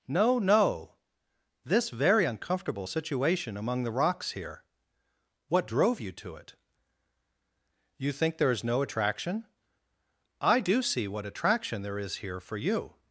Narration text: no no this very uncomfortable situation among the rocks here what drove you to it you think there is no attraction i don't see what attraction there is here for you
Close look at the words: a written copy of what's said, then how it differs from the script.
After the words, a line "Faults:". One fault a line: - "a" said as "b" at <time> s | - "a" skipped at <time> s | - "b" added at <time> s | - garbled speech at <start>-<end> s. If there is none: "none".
no no this very uncomfortable situation among the rocks here what drove you to it you think there is no attraction i do see what attraction there is here for you
Faults:
- "don't" said as "do" at 10.6 s